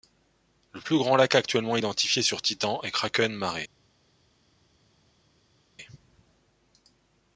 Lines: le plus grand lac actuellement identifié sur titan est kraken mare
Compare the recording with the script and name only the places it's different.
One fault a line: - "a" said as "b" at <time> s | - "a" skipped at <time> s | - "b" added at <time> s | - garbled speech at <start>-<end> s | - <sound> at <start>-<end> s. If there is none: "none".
none